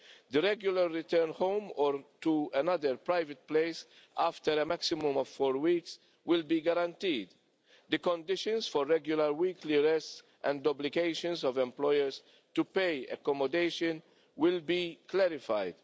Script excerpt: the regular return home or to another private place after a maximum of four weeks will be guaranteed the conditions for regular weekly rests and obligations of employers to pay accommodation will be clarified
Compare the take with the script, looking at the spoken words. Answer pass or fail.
pass